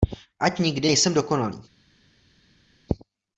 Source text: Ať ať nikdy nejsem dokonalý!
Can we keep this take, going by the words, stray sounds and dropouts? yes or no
no